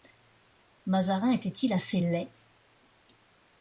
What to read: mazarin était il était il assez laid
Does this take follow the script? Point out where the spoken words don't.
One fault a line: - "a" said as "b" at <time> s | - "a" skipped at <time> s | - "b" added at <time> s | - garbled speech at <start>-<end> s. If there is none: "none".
- "était il" skipped at 1.7 s